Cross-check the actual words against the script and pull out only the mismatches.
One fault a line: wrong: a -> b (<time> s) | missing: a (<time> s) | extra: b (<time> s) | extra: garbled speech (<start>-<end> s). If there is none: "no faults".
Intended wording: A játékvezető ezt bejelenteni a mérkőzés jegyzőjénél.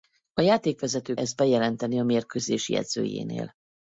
no faults